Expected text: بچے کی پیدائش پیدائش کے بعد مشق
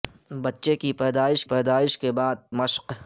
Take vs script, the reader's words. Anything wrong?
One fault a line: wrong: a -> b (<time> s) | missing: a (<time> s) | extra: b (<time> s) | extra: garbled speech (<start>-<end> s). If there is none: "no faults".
no faults